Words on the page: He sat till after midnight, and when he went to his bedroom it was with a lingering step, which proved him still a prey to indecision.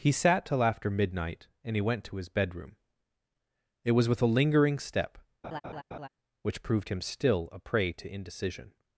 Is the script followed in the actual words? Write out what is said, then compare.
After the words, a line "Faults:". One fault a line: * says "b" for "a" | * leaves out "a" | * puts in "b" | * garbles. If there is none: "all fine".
He sat till after midnight, and he went to his bedroom it was with a lingering step, which proved him still a prey to indecision.
Faults:
* leaves out "when"